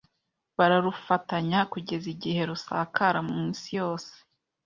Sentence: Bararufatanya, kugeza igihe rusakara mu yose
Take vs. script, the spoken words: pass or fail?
fail